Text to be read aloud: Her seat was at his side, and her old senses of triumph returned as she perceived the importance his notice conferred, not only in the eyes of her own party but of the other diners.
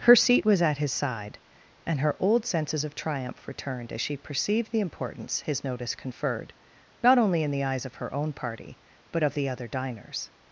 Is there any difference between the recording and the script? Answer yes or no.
no